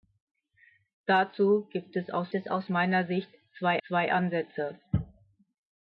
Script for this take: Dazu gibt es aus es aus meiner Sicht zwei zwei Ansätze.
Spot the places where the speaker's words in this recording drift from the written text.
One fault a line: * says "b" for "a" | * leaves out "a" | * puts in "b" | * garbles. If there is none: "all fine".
all fine